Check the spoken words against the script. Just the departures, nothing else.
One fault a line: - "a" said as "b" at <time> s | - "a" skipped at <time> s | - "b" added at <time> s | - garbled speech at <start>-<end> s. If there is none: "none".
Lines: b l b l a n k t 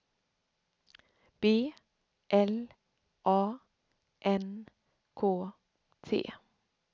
- "b l" skipped at 2.7 s